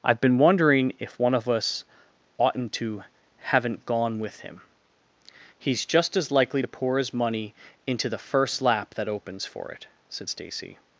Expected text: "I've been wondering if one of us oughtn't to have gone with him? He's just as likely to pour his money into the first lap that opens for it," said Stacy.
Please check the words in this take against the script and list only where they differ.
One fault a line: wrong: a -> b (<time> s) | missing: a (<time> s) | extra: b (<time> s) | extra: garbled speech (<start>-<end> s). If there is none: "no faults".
wrong: have -> haven't (3.4 s)